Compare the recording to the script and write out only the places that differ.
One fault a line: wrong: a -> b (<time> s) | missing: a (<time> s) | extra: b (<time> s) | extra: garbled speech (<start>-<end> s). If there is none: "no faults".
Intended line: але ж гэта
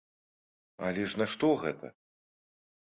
extra: нашто (1.2 s)